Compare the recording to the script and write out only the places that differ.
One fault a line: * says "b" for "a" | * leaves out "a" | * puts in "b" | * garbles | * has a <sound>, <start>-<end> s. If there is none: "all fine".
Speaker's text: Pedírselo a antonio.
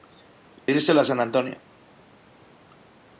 * has a dropout, 0.6-0.7 s
* puts in "san"